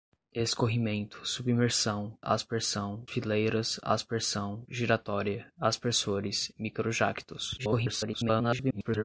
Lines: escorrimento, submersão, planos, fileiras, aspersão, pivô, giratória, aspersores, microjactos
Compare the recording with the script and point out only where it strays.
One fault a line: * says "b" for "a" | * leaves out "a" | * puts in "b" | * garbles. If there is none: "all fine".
* says "aspersão" for "planos"
* leaves out "pivô"
* garbles